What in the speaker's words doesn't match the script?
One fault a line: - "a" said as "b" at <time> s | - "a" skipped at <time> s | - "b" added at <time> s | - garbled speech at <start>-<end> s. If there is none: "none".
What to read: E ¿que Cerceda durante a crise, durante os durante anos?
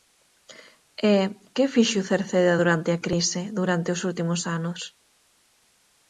- "fixo" added at 1.7 s
- "durante" said as "últimos" at 4.1 s